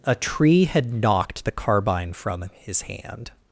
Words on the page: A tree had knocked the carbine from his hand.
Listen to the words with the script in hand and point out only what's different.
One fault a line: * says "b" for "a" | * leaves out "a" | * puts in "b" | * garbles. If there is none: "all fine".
all fine